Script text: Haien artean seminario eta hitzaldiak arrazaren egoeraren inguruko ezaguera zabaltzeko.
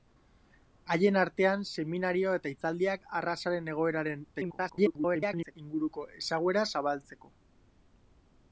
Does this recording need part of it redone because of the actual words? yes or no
yes